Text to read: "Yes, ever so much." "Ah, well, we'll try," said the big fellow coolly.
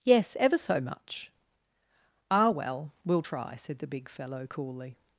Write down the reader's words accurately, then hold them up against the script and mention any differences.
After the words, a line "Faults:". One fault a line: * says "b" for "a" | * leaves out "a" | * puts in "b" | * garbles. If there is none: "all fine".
"Yes, ever so much." "Ah, well, we'll try," said the big fellow coolly.
Faults:
all fine